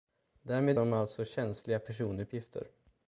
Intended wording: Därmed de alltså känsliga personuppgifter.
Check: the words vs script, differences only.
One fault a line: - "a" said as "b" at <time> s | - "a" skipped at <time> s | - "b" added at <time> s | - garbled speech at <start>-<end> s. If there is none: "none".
none